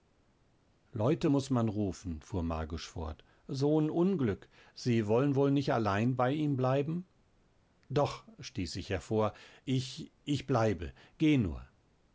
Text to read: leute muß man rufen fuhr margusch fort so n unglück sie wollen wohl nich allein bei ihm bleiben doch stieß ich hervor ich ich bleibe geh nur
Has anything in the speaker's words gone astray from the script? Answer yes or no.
no